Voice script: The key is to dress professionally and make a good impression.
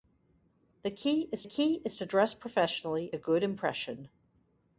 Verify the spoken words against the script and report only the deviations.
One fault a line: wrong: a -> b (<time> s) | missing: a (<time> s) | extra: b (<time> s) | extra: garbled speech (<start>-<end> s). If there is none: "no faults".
extra: key is (1.4 s)
missing: and make (3.1 s)